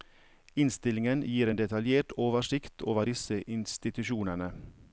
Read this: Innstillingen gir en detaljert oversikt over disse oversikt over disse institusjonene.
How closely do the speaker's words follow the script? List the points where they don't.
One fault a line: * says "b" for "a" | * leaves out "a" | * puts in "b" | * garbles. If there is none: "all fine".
* leaves out "oversikt over disse"